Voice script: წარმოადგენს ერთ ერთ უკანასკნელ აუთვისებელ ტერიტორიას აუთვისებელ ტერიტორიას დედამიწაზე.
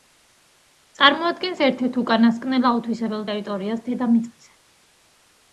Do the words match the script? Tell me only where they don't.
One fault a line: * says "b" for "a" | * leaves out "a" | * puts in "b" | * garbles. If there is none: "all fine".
* leaves out "აუთვისებელ ტერიტორიას"